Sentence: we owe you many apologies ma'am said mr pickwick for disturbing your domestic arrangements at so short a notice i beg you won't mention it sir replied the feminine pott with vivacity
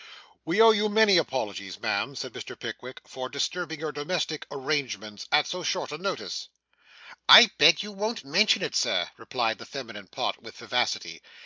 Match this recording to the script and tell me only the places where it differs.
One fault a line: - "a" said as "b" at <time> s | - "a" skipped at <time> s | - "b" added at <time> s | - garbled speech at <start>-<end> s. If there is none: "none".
none